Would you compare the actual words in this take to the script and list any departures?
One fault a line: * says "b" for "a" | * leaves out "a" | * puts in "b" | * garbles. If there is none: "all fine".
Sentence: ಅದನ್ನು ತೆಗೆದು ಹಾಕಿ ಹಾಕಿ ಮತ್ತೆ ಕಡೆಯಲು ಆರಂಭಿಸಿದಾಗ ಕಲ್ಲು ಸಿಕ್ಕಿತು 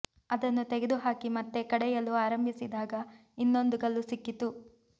* leaves out "ಹಾಕಿ"
* puts in "ಇನ್ನೊಂದು"